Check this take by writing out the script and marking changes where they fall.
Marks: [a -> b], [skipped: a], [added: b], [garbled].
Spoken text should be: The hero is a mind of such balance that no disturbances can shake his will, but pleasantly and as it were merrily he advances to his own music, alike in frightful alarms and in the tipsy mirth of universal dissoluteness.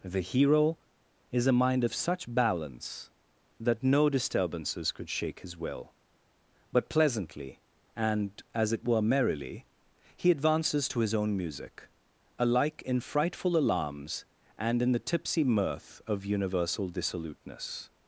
The hero is a mind of such balance that no disturbances [can -> could] shake his will, but pleasantly and as it were merrily he advances to his own music, alike in frightful alarms and in the tipsy mirth of universal dissoluteness.